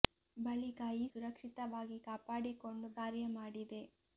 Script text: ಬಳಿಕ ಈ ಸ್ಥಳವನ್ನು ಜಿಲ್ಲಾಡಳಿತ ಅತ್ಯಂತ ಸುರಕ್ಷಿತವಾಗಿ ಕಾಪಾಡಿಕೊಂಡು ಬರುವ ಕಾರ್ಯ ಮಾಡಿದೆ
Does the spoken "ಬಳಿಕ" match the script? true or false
true